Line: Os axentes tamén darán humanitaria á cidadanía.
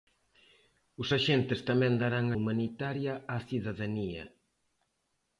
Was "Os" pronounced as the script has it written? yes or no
yes